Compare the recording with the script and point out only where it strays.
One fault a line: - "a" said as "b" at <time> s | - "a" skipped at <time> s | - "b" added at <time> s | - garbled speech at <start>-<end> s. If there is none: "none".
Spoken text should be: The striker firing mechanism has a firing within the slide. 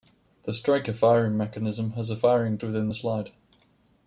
none